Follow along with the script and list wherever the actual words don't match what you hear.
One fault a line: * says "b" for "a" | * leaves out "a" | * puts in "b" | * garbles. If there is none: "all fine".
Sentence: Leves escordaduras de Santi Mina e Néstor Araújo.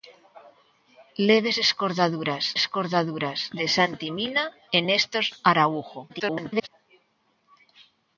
* puts in "escordaduras"
* garbles